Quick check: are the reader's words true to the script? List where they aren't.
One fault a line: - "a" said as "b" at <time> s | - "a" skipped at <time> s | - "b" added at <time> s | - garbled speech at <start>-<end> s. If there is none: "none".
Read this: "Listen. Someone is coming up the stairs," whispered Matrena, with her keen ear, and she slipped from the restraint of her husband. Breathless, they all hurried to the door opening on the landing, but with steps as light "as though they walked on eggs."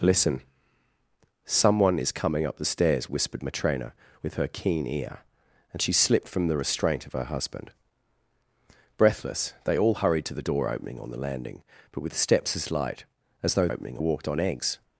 - "they" said as "opening" at 13.7 s